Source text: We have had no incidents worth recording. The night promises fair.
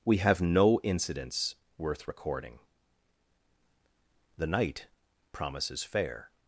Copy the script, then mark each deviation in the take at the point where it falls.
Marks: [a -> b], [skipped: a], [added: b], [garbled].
We have [skipped: had] no incidents worth recording. The night promises fair.